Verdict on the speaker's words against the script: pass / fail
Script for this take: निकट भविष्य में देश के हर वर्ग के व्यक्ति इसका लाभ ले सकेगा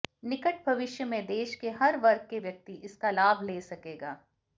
pass